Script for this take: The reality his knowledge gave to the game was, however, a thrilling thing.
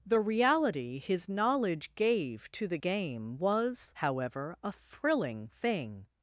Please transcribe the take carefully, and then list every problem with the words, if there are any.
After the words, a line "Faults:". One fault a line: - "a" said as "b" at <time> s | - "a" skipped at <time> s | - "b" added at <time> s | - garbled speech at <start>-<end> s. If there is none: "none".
The reality his knowledge gave to the game was, however, a thrilling thing.
Faults:
none